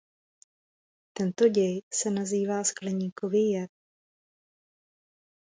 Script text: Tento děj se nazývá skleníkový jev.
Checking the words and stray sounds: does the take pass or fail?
pass